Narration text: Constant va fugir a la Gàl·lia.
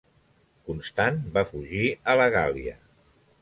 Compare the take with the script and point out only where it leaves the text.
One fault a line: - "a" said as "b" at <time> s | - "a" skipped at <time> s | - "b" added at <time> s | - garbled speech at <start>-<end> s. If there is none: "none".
none